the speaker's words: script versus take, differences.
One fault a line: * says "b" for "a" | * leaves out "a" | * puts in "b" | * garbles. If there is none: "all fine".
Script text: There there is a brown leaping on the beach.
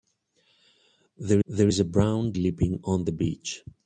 all fine